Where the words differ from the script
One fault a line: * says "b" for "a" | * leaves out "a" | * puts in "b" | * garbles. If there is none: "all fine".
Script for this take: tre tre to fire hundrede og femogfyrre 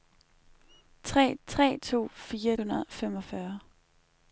all fine